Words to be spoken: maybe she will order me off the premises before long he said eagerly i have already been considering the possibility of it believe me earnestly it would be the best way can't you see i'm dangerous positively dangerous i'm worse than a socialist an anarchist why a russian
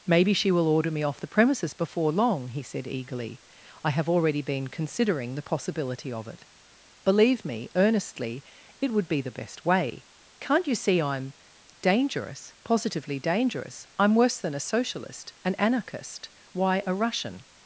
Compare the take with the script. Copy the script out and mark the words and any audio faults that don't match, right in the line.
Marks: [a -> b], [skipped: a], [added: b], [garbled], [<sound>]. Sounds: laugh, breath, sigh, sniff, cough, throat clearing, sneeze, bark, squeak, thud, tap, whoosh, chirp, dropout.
maybe she will order me off the premises before long he said eagerly i have already been considering the possibility of it believe me earnestly it would be the best way can't you see i'm dangerous positively dangerous i'm worse than a socialist an anarchist why a russian